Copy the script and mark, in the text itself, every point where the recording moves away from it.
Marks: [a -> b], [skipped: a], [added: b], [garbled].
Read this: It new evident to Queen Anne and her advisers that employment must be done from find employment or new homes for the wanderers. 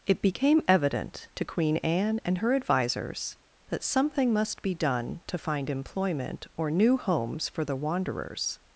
It [new -> became] evident to Queen Anne and her advisers that [employment -> something] must be done [from -> to] find employment or new homes for the wanderers.